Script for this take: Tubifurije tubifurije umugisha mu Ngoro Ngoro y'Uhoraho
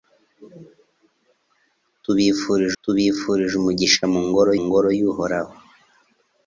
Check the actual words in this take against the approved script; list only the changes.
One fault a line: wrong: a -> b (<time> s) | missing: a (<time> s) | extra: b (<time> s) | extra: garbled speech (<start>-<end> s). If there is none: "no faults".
no faults